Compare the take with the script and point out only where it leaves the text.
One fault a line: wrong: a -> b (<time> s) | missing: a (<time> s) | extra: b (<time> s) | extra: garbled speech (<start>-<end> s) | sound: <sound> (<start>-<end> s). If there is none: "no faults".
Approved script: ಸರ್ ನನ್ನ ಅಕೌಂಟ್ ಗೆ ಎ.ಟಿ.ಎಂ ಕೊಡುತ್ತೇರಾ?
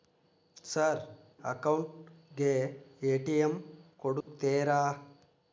missing: ನನ್ನ (1.0 s)
sound: dropout (4.2-4.3 s)